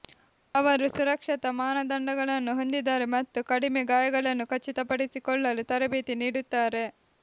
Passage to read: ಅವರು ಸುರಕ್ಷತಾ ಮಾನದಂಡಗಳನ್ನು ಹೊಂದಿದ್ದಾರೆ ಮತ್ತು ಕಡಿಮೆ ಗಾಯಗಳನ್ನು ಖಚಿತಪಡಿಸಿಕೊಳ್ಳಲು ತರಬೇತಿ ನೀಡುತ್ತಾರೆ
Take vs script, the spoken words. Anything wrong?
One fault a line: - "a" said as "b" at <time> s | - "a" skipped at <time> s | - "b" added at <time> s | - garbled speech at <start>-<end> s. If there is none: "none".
none